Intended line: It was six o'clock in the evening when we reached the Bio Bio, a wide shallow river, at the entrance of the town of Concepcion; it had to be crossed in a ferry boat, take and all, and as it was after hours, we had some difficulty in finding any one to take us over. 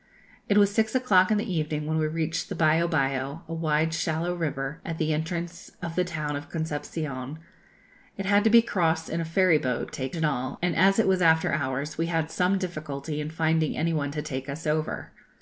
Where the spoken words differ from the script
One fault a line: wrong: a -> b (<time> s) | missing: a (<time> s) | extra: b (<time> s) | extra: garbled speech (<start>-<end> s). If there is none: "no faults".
no faults